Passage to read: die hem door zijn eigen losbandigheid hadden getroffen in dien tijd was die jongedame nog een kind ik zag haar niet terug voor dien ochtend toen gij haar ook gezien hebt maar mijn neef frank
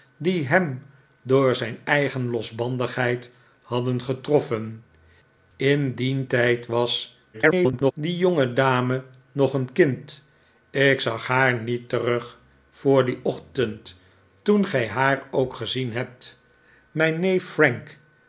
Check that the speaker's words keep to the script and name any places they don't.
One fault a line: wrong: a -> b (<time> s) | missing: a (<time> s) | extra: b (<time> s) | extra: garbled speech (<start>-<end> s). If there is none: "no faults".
extra: garbled speech (7.3-7.9 s)
missing: maar (16.4 s)